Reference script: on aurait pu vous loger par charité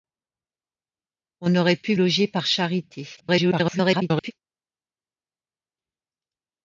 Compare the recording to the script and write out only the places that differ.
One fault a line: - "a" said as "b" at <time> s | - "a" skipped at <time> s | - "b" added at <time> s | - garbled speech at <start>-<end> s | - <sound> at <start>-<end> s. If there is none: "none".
- "vous" skipped at 1.9 s
- garbled speech at 3.2-4.3 s